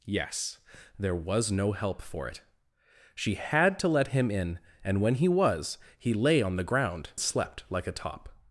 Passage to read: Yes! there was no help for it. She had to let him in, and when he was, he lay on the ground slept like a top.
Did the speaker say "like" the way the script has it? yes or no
yes